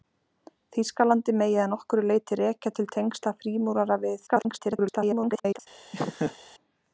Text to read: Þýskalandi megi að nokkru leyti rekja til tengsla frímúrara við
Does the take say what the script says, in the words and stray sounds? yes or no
no